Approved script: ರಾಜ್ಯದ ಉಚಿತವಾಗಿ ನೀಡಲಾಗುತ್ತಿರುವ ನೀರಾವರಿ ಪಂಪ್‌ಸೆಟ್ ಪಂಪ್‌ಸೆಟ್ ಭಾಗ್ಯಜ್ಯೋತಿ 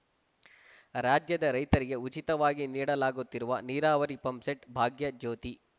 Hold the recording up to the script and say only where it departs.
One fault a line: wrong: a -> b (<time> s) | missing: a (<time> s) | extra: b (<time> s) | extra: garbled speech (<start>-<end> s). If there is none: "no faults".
extra: ರೈತರಿಗೆ (1.5 s)
missing: ಪಂಪ್‌ಸೆಟ್ (4.7 s)